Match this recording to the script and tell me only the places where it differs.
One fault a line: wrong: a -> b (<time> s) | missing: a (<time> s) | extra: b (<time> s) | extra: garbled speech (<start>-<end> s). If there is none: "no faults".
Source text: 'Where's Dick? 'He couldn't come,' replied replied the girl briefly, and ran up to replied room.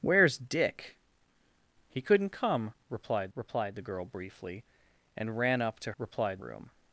no faults